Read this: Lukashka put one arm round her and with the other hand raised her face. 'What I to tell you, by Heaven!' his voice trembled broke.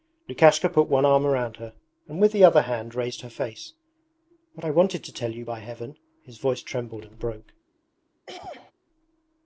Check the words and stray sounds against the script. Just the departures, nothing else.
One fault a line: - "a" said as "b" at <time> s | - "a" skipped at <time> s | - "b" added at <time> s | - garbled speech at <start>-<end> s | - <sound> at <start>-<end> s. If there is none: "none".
- "wanted" added at 4.7 s
- "and" added at 7.0 s
- throat clearing at 8.3-8.7 s